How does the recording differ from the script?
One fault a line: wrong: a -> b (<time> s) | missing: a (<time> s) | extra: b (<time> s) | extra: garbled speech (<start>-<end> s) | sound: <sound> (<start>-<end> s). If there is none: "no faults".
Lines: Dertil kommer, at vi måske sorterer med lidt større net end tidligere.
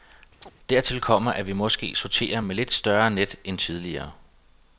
sound: chirp (0.4-0.5 s)